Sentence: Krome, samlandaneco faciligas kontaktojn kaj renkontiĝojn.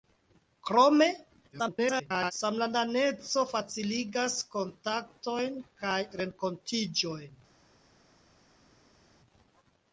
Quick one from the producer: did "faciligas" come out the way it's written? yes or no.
yes